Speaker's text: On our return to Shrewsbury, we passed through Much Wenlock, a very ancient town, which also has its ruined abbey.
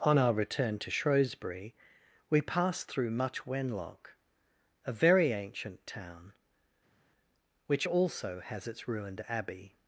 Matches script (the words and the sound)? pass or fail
pass